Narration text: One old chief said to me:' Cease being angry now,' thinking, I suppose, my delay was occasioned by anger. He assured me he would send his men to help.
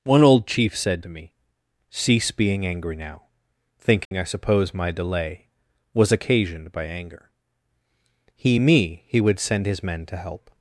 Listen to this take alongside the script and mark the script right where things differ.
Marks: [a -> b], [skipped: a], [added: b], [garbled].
One old chief said to me:' Cease being angry now,' thinking, I suppose, my delay was occasioned by anger. He [skipped: assured] me he would send his men to help.